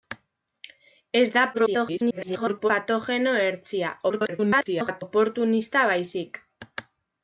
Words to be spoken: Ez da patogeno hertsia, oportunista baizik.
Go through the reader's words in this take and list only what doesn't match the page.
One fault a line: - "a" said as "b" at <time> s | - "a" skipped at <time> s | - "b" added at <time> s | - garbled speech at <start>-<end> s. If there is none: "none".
- garbled speech at 1.5-2.7 s
- garbled speech at 4.1-5.0 s